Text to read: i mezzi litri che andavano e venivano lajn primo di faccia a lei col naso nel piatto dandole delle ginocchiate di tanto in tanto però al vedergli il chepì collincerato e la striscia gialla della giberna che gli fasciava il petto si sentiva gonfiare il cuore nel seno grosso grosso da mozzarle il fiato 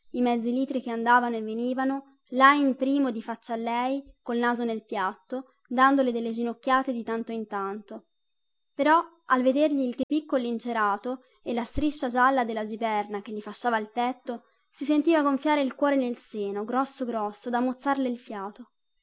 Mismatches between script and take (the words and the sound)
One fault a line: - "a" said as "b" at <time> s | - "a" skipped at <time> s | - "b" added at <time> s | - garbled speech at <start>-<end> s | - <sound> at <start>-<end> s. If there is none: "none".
- dropout at 10.0-10.1 s